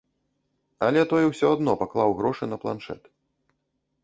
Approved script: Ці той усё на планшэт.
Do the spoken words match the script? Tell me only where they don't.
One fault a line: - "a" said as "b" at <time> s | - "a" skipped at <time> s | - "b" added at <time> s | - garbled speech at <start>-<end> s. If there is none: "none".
- "Ці" said as "Але" at 0.9 s
- "адно паклаў грошы" added at 1.6 s